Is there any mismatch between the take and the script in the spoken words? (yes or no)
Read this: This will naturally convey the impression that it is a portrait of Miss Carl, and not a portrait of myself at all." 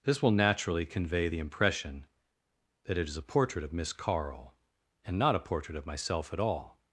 no